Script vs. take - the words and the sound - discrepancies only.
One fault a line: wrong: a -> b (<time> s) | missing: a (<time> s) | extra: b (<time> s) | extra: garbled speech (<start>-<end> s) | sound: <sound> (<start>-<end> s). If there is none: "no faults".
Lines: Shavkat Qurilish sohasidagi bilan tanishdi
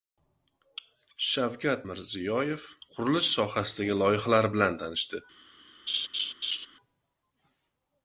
extra: Mirziyoyev (1.9 s)
extra: loyihalar (4.0 s)
sound: laugh (5.9-6.7 s)